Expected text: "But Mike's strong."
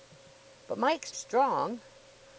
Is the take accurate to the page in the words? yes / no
yes